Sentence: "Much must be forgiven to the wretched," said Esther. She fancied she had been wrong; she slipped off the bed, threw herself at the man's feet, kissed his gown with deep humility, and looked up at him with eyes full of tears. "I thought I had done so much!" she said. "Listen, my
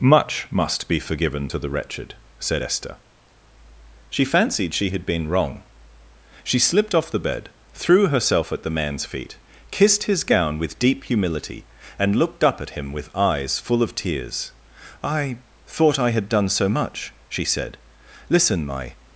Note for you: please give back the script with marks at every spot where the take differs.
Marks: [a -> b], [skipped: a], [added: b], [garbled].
"Much must be forgiven to the wretched," said Esther. She fancied she had been wrong; she slipped off the bed, threw herself at the man's feet, kissed his gown with deep humility, and looked up at him with eyes full of tears. "I thought I had done so much!" she said. "Listen, my